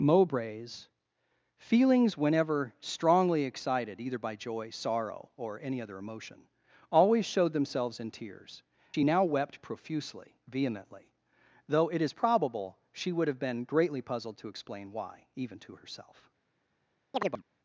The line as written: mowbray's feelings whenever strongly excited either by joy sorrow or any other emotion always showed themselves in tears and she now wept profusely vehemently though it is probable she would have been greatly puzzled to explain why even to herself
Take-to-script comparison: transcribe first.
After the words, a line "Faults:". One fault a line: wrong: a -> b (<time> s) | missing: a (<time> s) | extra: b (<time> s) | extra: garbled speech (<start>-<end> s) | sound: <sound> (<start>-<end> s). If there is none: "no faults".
mowbray's feelings whenever strongly excited either by joy sorrow or any other emotion always showed themselves in tears she now wept profusely vehemently though it is probable she would have been greatly puzzled to explain why even to herself
Faults:
missing: and (8.6 s)
sound: chirp (17.1-17.4 s)